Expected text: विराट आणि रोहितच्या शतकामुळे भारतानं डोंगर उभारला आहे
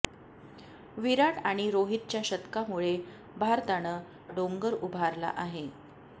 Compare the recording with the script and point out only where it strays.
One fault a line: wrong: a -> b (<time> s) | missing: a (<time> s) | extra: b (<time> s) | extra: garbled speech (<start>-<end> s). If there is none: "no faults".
no faults